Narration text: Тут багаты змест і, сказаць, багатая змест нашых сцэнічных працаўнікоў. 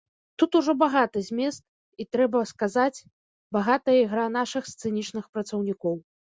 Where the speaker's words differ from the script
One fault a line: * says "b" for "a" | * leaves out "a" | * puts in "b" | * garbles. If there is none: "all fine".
* puts in "ужо"
* puts in "трэба"
* says "ігра" for "змест"